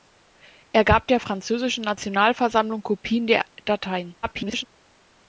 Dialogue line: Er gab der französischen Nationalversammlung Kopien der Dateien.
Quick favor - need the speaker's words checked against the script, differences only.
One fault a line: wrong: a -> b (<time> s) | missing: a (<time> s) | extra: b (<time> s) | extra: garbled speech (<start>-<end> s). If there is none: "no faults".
extra: garbled speech (4.2-4.7 s)